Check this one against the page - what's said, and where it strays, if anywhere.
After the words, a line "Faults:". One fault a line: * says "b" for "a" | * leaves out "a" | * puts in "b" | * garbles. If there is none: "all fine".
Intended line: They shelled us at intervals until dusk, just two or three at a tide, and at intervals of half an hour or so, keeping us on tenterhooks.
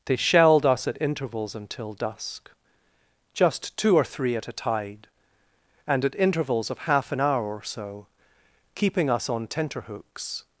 They shelled us at intervals until dusk, just two or three at a tide, and at intervals of half an hour or so, keeping us on tenterhooks.
Faults:
all fine